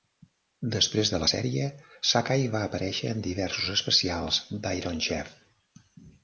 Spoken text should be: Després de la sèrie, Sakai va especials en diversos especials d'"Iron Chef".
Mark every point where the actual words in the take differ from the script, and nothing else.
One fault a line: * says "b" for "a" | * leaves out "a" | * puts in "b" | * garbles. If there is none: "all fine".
* says "aparèixer" for "especials"